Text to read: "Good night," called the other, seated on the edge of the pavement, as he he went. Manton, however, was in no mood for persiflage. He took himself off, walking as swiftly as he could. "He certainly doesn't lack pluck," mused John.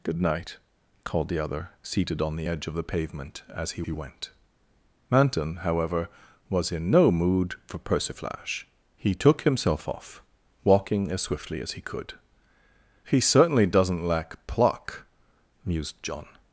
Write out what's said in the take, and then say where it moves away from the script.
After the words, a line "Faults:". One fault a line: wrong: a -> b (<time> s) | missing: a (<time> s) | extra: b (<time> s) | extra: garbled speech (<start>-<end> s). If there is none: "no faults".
"Good night," called the other, seated on the edge of the pavement, as he he went. Manton, however, was in no mood for persiflage. He took himself off, walking as swiftly as he could. "He certainly doesn't lack pluck," mused John.
Faults:
no faults